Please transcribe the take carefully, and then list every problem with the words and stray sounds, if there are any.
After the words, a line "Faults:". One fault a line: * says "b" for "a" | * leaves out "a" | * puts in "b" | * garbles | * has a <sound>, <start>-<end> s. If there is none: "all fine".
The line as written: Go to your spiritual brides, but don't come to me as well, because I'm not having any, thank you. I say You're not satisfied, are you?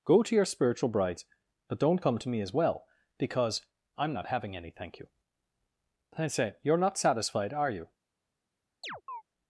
Go to your spiritual brides, but don't come to me as well, because I'm not having any, thank you. I say You're not satisfied, are you?
Faults:
* has a chirp, 8.8-9.2 s